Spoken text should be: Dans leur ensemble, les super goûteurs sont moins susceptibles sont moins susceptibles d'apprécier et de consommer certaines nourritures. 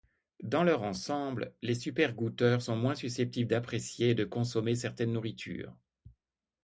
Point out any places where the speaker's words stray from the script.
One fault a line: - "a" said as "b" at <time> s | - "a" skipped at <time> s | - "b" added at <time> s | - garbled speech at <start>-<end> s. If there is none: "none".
- "sont moins susceptibles" skipped at 3.5 s